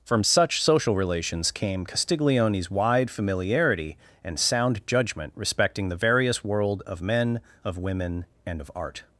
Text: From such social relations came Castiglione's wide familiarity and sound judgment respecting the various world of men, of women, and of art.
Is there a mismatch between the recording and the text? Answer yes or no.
no